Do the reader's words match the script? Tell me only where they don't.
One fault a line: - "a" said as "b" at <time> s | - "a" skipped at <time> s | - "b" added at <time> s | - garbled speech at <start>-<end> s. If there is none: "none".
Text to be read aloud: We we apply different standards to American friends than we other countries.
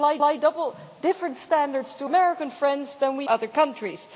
none